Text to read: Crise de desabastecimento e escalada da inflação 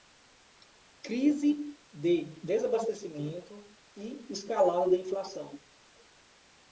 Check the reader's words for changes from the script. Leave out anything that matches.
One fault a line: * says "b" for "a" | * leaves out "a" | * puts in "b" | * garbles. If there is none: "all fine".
all fine